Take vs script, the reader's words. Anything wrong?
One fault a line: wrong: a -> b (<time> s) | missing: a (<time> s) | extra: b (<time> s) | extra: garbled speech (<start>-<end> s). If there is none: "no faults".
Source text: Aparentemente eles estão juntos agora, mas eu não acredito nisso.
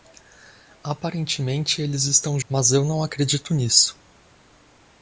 missing: juntos agora (2.4 s)